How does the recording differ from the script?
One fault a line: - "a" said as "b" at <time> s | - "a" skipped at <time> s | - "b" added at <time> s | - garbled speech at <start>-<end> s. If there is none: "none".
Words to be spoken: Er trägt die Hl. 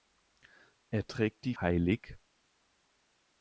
none